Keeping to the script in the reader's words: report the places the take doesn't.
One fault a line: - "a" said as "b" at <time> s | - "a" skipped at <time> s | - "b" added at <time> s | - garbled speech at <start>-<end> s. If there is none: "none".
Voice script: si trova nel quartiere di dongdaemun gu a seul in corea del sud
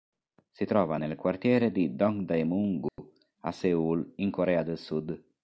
none